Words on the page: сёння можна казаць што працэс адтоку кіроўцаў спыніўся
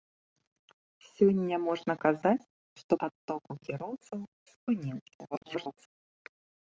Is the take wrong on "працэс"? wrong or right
wrong